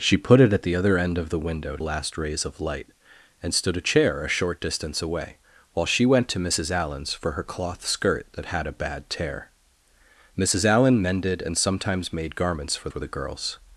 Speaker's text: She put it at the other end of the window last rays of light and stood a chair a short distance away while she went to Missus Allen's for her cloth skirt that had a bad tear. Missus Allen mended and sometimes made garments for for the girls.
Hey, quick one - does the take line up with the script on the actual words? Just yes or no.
yes